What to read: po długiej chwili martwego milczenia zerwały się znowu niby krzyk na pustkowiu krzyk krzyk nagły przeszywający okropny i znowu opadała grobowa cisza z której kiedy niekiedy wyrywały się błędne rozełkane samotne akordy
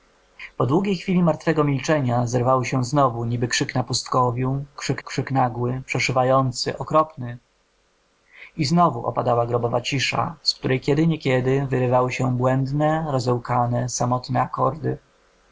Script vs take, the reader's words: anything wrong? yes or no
no